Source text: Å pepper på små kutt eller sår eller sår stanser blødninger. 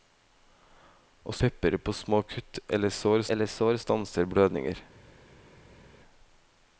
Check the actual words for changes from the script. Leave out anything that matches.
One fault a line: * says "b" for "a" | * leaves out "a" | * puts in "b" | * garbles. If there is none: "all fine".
all fine